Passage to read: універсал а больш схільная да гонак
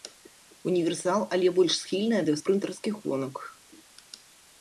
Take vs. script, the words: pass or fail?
fail